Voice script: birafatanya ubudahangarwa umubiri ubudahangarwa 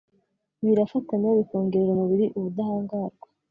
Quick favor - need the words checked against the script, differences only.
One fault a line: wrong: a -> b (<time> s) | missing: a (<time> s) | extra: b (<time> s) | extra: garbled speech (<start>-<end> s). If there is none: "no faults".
wrong: ubudahangarwa -> bikongerera (1.4 s)